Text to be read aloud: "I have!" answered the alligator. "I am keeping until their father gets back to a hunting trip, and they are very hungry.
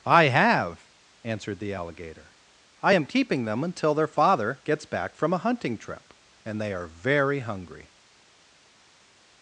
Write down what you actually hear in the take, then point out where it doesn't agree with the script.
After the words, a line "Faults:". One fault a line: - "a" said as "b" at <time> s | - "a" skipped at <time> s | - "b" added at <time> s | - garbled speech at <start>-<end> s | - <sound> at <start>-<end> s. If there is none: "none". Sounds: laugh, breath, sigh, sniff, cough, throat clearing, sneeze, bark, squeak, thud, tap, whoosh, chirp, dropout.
"I have!" answered the alligator. "I am keeping them until their father gets back from a hunting trip, and they are very hungry.
Faults:
- "them" added at 3.4 s
- "to" said as "from" at 5.1 s